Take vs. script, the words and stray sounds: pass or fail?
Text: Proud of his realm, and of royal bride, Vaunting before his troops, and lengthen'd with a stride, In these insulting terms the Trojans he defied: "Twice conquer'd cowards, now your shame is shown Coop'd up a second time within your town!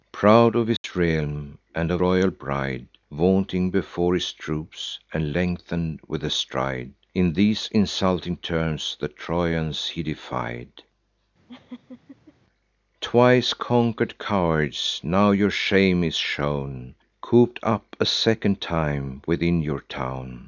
fail